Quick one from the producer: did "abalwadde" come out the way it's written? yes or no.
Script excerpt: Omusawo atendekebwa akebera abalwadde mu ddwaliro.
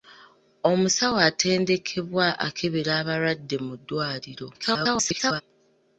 yes